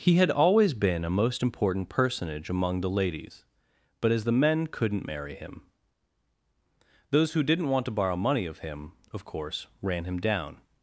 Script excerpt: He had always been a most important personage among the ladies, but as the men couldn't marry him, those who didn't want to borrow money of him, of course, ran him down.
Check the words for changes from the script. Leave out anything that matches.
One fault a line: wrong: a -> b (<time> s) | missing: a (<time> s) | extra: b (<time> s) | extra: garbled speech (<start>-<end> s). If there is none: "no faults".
no faults